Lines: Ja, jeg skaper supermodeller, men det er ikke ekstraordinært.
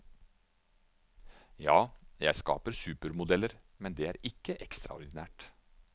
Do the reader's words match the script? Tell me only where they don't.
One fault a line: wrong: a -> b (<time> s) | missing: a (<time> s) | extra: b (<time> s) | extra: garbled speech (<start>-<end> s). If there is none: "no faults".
no faults